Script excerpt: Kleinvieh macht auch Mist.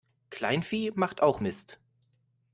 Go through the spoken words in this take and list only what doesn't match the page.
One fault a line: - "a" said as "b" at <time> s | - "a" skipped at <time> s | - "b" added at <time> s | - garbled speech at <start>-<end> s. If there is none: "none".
none